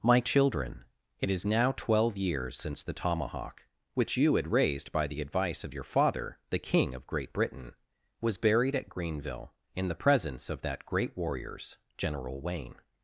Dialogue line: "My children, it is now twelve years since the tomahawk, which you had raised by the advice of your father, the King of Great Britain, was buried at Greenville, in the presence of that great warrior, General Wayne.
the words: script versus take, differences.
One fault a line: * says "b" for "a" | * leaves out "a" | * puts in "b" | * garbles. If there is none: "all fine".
* says "warriors" for "warrior"